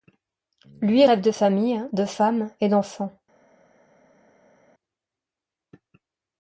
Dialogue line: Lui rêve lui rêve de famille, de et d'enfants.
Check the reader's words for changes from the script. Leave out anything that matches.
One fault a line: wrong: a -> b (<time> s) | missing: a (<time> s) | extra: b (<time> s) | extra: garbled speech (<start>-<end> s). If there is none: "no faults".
missing: lui rêve (1.2 s)
extra: femme (2.0 s)